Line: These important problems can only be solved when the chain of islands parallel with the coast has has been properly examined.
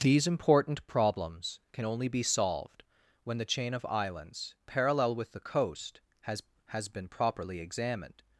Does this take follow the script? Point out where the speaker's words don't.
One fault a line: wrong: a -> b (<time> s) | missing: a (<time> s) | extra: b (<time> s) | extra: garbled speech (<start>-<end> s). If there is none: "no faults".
no faults